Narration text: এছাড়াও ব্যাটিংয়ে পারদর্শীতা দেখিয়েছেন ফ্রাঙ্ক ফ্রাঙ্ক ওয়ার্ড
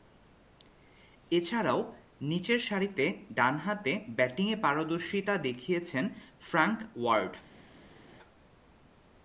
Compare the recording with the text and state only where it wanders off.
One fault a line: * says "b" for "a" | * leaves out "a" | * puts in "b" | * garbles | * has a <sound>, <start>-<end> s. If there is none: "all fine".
* puts in "নিচেরসারিতে ডানহাতে"
* leaves out "ফ্রাঙ্ক"